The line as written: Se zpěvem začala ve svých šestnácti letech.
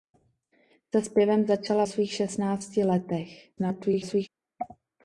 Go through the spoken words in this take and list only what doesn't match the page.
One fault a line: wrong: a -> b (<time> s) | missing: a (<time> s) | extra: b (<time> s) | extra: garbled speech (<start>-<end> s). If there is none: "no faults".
missing: ve (1.9 s)
extra: garbled speech (3.6-4.3 s)